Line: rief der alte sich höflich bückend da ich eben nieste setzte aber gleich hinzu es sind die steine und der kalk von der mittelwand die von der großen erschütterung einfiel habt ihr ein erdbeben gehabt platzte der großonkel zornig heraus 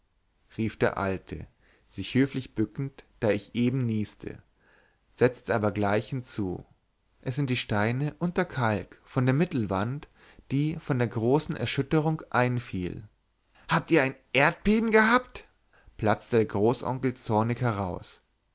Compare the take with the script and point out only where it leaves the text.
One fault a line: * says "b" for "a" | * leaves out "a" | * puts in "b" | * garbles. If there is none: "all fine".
all fine